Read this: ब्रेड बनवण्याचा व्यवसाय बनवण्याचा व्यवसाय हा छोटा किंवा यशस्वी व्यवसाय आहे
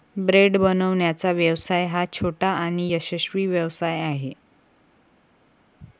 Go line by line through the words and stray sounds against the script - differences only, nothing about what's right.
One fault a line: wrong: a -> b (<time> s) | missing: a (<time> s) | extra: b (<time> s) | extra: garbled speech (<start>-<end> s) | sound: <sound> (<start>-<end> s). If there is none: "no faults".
missing: बनवण्याचा व्यवसाय (1.9 s)
wrong: किंवा -> आणि (2.5 s)